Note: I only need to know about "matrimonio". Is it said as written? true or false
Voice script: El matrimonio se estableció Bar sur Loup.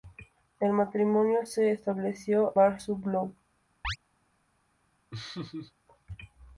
true